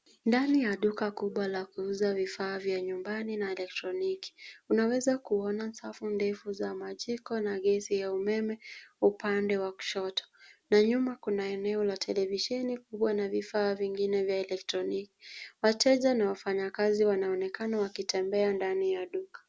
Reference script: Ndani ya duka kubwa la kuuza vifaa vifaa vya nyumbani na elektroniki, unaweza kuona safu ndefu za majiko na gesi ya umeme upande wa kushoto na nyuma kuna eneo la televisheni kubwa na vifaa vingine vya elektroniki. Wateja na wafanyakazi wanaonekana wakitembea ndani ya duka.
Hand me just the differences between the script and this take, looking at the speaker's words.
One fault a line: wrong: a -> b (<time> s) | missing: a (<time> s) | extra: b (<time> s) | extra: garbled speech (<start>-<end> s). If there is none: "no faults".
missing: vifaa (2.6 s)